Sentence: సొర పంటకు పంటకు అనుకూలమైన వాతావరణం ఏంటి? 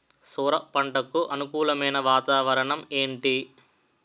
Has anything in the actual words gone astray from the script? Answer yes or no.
yes